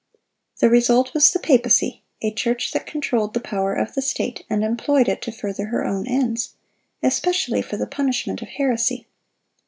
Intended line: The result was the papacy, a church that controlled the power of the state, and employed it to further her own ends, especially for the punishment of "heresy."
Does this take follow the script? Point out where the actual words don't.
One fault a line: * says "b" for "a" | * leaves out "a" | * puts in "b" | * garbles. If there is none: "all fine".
all fine